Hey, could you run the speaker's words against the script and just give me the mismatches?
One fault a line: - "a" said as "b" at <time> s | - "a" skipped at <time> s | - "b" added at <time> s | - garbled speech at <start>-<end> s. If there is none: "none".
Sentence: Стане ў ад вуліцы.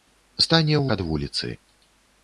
none